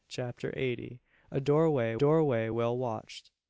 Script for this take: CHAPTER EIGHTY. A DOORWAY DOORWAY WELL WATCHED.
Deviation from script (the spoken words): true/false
false